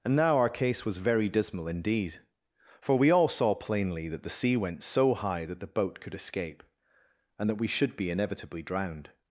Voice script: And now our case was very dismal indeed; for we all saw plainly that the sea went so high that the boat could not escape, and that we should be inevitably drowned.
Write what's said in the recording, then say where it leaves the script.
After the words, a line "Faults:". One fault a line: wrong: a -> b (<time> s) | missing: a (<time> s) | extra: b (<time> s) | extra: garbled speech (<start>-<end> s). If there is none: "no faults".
And now our case was very dismal indeed; for we all saw plainly that the sea went so high that the boat could escape, and that we should be inevitably drowned.
Faults:
missing: not (6.2 s)